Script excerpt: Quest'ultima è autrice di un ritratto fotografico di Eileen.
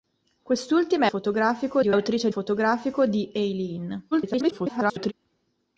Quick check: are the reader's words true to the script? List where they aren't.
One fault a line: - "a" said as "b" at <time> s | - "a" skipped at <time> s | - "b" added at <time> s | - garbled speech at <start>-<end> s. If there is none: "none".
- "autrice" said as "fotografico" at 1.1 s
- "ritratto" said as "autrice" at 1.9 s
- garbled speech at 4.1-5.1 s